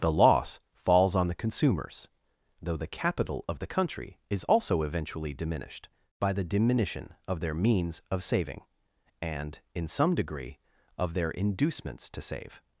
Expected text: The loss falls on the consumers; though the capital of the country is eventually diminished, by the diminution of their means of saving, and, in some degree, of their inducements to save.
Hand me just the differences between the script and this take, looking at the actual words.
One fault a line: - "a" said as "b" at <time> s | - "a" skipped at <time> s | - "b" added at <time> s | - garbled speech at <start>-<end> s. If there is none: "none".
- "also" added at 4.5 s